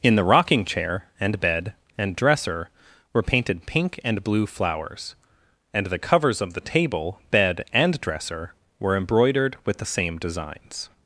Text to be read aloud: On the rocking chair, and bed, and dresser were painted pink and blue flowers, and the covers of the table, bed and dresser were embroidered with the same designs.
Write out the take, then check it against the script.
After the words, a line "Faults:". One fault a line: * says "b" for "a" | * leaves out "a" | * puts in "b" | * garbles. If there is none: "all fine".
In the rocking chair, and bed, and dresser were painted pink and blue flowers, and the covers of the table, bed and dresser were embroidered with the same designs.
Faults:
* says "In" for "On"